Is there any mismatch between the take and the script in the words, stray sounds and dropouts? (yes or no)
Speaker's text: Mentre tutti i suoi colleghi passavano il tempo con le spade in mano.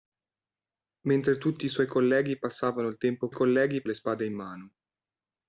yes